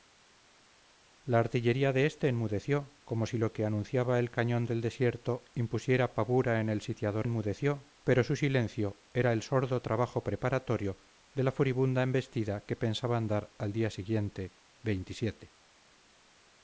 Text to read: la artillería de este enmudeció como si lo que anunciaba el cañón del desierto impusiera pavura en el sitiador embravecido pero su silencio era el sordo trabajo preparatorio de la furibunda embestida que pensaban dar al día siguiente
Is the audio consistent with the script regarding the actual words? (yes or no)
no